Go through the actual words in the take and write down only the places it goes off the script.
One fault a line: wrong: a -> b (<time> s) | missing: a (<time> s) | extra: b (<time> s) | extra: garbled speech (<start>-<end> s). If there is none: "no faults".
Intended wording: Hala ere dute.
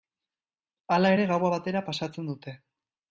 extra: gaua batera pasatzen (1.3 s)